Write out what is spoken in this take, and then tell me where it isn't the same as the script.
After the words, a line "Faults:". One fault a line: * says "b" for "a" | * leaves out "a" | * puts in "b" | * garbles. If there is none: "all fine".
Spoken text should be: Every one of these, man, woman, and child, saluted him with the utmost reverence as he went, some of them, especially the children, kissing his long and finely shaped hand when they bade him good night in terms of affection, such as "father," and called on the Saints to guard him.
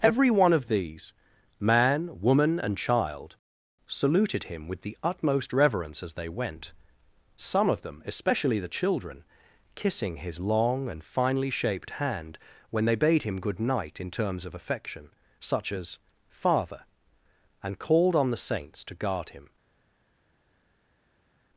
Every one of these, man, woman, and child, saluted him with the utmost reverence as they went, some of them, especially the children, kissing his long and finely shaped hand when they bade him good night in terms of affection, such as "father," and called on the Saints to guard him.
Faults:
* says "they" for "he"